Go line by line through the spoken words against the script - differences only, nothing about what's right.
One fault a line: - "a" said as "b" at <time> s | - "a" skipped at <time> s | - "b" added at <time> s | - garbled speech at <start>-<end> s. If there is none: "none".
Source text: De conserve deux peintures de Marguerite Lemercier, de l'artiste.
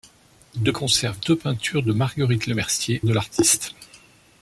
none